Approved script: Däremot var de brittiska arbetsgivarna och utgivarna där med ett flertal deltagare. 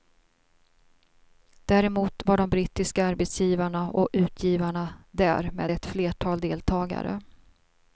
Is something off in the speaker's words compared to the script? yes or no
no